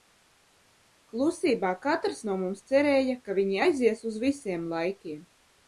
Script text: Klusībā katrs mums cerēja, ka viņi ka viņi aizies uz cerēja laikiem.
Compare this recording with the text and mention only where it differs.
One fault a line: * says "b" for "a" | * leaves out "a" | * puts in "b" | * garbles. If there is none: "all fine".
* puts in "no"
* leaves out "ka viņi"
* says "visiem" for "cerēja"